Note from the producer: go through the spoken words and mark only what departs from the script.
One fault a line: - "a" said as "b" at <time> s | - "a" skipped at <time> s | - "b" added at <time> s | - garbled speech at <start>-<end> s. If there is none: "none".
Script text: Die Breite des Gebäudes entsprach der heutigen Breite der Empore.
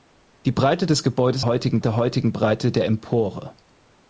- "entsprach" said as "heutigen" at 1.4 s